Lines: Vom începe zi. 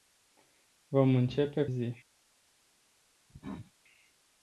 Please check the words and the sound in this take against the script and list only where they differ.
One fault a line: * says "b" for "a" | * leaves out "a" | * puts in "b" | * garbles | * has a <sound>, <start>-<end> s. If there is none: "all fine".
* has a cough, 3.3-3.7 s